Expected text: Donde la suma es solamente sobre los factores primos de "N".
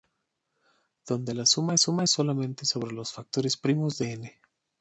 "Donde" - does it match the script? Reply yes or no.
yes